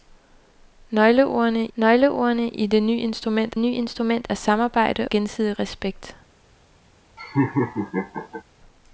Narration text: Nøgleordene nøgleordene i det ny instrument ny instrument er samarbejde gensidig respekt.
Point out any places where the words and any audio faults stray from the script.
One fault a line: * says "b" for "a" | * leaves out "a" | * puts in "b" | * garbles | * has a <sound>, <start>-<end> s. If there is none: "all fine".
* has a laugh, 7.2-8.4 s